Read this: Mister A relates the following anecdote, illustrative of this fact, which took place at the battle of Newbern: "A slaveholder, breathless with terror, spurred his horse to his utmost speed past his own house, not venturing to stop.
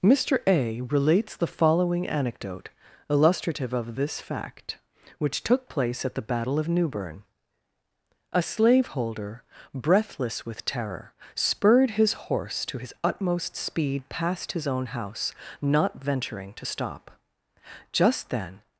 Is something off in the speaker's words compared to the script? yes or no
yes